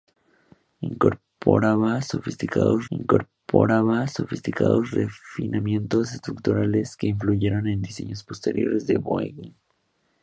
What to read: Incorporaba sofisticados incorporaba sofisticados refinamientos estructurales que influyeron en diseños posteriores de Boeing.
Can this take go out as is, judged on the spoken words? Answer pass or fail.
pass